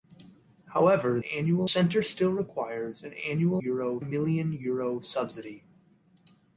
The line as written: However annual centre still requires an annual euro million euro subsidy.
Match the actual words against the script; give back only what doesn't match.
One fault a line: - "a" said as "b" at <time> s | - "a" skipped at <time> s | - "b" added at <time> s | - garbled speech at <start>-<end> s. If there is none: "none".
none